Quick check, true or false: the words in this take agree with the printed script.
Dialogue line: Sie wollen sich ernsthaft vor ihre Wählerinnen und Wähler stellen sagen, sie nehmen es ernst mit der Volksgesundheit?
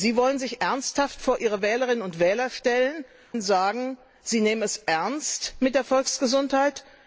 true